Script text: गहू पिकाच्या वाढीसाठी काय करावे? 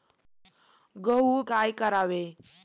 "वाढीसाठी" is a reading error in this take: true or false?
true